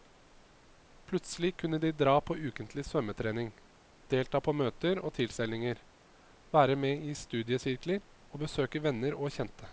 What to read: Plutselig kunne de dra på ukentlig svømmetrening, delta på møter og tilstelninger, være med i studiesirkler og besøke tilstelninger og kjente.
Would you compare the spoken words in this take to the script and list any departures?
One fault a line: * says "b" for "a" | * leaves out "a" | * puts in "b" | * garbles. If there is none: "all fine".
* says "venner" for "tilstelninger"